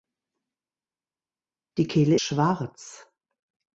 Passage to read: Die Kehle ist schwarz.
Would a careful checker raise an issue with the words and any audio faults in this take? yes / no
yes